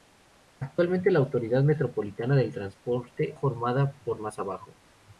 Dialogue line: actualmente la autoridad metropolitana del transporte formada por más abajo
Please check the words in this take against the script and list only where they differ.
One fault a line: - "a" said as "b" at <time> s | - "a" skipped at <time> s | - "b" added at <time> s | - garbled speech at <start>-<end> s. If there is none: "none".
none